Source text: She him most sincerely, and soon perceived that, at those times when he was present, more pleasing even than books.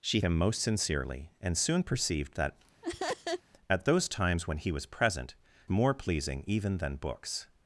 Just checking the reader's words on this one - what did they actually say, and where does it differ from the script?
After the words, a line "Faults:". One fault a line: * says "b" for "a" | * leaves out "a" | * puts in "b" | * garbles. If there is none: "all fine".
She him most sincerely, and soon perceived that, at those times when he was present, more pleasing even than books.
Faults:
all fine